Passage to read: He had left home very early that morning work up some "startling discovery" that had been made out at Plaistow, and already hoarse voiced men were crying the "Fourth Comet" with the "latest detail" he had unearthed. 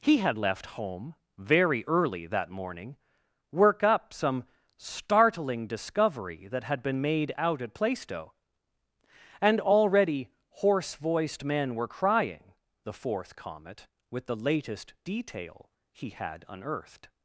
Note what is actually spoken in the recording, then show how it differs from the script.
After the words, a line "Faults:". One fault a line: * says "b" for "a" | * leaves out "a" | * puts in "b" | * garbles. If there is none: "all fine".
He had left home very early that morning work up some "startling discovery" that had been made out at Plaistow, and already hoarse voiced men were crying the "Fourth Comet" with the "latest detail" he had unearthed.
Faults:
all fine